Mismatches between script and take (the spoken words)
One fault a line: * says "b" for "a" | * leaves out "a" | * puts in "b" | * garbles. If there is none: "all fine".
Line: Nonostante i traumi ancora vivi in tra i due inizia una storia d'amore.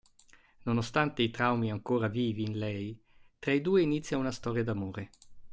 * puts in "lei"